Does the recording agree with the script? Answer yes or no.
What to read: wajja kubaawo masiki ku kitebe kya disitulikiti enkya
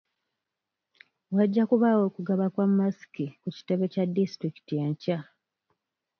no